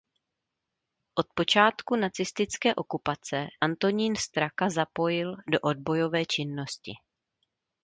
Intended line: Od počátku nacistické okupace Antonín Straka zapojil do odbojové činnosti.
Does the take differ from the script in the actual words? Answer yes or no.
no